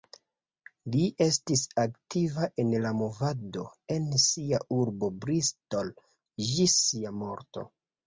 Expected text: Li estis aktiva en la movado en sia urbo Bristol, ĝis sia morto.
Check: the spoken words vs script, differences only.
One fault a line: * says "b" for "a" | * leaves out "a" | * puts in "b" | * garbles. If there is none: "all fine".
all fine